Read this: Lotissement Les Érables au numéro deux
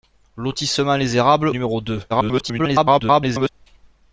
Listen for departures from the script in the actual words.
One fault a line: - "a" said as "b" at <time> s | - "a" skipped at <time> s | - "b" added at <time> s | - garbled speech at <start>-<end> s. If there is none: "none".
- "au" skipped at 1.5 s
- garbled speech at 2.1-3.5 s